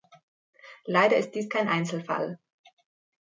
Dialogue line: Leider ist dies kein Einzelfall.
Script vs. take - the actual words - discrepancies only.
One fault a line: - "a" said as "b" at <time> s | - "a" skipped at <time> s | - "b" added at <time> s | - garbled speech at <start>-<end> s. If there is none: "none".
none